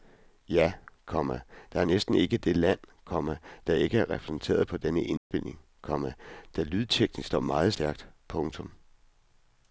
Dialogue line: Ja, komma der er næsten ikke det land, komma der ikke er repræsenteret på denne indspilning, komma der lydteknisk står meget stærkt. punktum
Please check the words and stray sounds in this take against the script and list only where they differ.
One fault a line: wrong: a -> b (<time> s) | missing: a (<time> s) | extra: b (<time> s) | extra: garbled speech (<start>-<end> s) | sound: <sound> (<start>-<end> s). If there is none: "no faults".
sound: dropout (5.2-5.3 s)